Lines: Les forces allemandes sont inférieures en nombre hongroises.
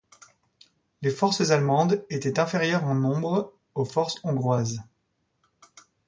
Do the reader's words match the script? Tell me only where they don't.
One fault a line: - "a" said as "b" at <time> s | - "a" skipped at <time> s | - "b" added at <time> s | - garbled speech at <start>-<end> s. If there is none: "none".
- "sont" said as "étaient" at 2.1 s
- "aux forces" added at 3.8 s